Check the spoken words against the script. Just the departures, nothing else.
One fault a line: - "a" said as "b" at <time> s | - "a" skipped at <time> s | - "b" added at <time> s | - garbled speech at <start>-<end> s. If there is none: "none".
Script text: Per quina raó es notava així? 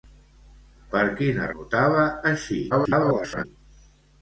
- "raó es" skipped at 1.5 s
- garbled speech at 2.7-3.4 s